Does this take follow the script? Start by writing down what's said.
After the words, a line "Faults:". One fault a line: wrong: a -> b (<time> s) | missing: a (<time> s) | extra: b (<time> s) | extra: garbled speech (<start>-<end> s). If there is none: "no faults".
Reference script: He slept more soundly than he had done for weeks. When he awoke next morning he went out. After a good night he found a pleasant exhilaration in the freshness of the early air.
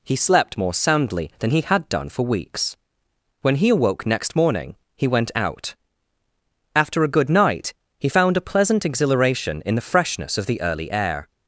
He slept more soundly than he had done for weeks. When he awoke next morning he went out. After a good night he found a pleasant exhilaration in the freshness of the early air.
Faults:
no faults